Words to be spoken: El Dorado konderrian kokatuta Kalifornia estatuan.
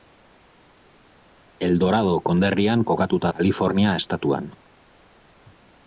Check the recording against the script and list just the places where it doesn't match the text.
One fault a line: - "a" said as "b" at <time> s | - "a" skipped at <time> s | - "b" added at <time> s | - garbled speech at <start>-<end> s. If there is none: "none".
none